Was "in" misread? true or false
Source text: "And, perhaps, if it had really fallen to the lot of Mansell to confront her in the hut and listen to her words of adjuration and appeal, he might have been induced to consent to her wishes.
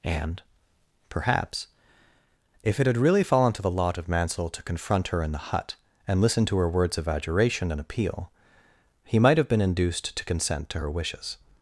false